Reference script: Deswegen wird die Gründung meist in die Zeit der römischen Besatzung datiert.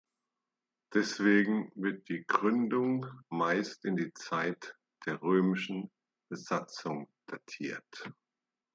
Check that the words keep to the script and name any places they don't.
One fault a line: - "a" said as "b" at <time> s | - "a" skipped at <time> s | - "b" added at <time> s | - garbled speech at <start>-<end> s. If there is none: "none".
none